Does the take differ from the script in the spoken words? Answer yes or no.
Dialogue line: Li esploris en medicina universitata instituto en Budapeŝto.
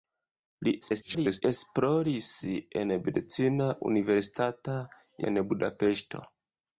yes